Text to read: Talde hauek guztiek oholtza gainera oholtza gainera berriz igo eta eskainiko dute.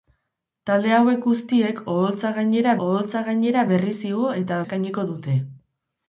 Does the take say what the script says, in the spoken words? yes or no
yes